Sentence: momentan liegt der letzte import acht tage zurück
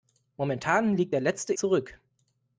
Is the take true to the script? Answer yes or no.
no